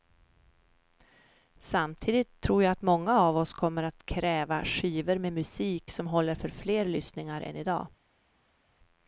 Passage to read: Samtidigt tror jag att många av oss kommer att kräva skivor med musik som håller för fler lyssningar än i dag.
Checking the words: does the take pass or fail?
pass